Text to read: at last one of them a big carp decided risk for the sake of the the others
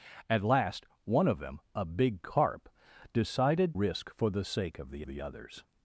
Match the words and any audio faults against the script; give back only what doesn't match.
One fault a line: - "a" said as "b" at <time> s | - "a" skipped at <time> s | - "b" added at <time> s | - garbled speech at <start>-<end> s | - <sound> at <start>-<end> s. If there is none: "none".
none